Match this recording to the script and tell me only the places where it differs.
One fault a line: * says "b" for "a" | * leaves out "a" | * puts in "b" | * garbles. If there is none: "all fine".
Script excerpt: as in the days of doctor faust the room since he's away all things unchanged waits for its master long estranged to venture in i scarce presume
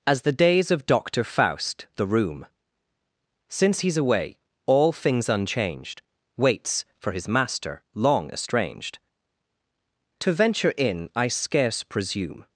* leaves out "in"
* says "his" for "its"